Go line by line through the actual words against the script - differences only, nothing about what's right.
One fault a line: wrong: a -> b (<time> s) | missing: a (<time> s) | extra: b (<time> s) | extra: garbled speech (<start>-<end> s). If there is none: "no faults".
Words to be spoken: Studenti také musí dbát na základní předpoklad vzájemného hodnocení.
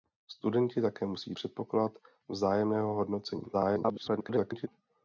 missing: dbát na základní (1.4 s)
extra: garbled speech (3.5-4.7 s)